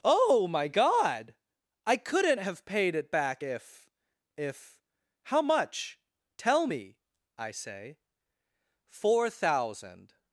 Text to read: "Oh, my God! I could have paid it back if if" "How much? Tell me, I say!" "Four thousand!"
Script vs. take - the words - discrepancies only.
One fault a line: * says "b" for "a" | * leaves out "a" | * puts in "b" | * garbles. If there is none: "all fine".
* says "couldn't" for "could"